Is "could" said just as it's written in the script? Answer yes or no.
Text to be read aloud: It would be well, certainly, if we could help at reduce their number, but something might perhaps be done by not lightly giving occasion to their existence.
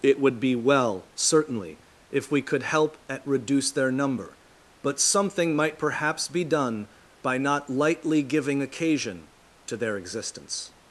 yes